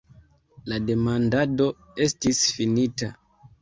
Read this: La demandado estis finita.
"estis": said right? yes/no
yes